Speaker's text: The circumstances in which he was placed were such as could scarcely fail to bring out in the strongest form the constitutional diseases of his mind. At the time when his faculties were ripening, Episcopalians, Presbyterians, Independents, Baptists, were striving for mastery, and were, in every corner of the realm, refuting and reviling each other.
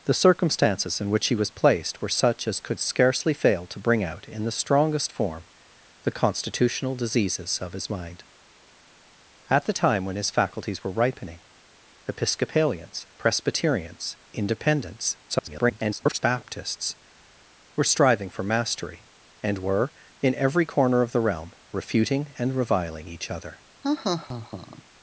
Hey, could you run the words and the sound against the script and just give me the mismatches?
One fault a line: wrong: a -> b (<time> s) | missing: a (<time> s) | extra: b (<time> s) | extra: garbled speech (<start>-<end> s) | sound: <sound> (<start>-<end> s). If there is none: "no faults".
extra: garbled speech (15.3-16.2 s)
sound: laugh (23.8-24.8 s)